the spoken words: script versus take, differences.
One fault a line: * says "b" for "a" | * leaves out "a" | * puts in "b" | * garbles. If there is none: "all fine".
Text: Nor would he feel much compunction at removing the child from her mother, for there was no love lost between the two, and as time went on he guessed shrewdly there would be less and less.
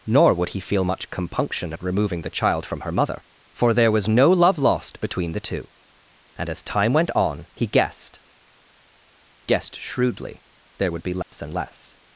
* puts in "guessed"